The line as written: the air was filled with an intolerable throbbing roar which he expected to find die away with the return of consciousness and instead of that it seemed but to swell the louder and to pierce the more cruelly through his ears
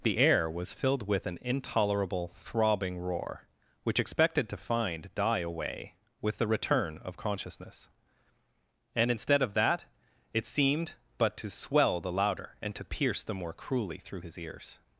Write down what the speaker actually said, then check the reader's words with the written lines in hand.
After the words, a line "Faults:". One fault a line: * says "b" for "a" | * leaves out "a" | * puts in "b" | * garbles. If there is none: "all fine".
the air was filled with an intolerable throbbing roar which expected to find die away with the return of consciousness and instead of that it seemed but to swell the louder and to pierce the more cruelly through his ears
Faults:
* leaves out "he"